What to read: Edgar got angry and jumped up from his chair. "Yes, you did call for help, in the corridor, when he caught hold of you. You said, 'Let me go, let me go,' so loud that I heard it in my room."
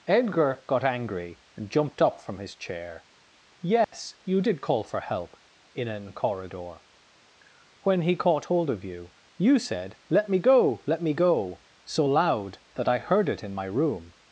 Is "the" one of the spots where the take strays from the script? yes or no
yes